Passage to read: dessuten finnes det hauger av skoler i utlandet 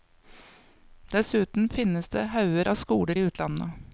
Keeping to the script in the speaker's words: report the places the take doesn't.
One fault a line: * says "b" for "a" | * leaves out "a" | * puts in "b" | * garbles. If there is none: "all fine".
all fine